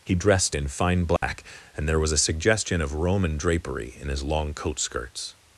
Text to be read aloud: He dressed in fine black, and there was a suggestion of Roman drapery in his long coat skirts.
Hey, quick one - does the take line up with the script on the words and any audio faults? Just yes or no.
no